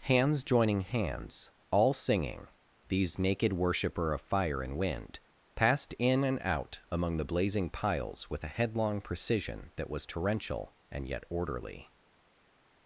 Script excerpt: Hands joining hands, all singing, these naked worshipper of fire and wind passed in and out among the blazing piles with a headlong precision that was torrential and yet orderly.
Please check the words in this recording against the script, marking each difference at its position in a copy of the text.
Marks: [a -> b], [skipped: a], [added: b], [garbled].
Hands joining hands, all singing, these naked worshipper of fire and wind passed in and out among the blazing piles with a headlong precision that was torrential and yet orderly.